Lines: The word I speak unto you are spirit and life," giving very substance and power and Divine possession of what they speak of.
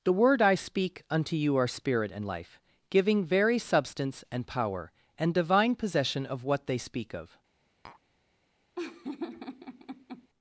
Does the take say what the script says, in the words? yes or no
yes